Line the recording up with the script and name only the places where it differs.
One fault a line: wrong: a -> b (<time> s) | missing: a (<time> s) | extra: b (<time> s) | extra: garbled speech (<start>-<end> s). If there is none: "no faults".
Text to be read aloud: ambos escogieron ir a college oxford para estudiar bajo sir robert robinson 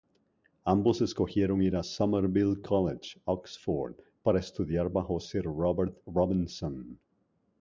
extra: somerville (1.8 s)